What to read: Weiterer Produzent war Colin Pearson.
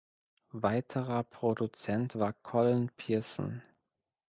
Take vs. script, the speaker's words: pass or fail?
pass